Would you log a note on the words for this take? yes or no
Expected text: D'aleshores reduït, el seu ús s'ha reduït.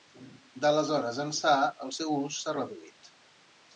yes